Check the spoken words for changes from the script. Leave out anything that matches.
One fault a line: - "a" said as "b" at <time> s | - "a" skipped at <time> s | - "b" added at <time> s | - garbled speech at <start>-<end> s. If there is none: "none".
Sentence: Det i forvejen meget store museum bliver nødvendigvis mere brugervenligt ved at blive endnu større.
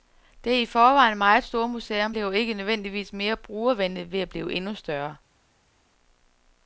- "ikke" added at 2.3 s